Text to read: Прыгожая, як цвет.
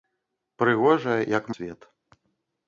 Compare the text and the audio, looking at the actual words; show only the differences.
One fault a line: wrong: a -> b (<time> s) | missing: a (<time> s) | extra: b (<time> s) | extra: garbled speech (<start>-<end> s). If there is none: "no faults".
no faults